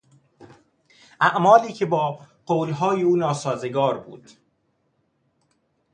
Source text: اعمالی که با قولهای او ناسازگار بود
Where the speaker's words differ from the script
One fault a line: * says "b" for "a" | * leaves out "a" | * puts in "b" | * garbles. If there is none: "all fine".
all fine